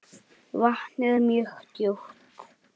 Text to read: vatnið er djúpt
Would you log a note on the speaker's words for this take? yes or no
yes